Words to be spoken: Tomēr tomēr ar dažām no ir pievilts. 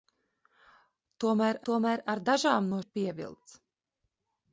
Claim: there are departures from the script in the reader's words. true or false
false